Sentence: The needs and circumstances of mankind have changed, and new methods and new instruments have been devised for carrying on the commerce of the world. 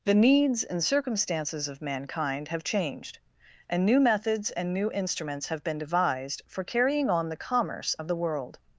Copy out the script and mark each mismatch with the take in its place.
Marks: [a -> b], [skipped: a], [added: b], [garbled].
The needs and circumstances of mankind have changed, and new methods and new instruments have been devised for carrying on the commerce of the world.